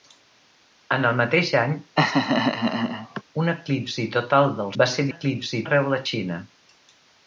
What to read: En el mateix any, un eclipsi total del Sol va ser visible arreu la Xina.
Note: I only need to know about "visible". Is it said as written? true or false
false